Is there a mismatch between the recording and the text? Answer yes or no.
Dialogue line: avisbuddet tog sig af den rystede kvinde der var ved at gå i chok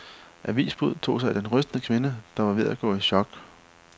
no